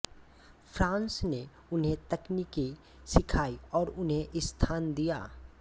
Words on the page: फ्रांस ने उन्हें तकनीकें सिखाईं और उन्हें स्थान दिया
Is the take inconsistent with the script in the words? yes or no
no